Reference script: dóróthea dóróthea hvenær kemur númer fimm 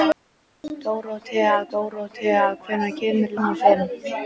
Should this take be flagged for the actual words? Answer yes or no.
no